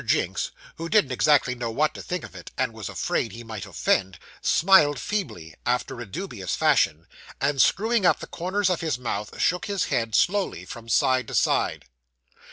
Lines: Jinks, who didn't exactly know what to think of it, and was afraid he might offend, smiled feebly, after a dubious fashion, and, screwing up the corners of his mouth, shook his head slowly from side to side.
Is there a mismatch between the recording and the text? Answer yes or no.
no